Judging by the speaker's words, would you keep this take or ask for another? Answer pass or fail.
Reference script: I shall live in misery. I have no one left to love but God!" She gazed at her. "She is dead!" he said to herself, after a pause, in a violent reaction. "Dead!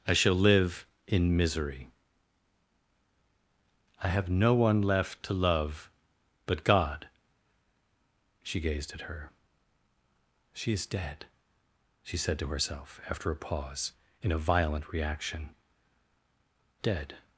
fail